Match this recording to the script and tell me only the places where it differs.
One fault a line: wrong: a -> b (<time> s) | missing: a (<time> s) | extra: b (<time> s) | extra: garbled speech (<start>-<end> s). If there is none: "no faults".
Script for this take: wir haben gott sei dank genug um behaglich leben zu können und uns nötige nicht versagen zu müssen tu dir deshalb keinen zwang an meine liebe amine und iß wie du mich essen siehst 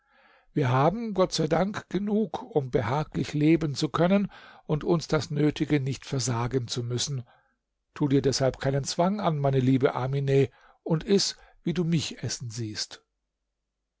extra: das (5.1 s)